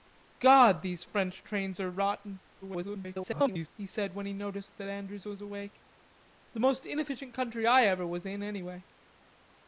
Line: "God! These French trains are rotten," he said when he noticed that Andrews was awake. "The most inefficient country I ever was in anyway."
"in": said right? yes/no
yes